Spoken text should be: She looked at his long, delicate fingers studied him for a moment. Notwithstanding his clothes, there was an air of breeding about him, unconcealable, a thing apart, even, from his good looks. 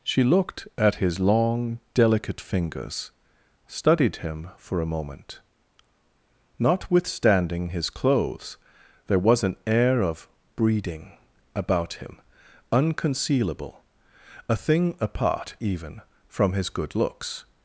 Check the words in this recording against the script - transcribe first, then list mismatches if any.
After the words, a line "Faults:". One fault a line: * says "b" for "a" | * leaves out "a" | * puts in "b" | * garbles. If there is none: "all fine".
She looked at his long, delicate fingers studied him for a moment. Notwithstanding his clothes, there was an air of breeding about him, unconcealable, a thing apart, even, from his good looks.
Faults:
all fine